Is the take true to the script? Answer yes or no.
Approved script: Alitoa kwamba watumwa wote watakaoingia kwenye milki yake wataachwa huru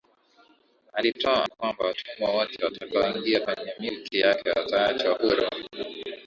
yes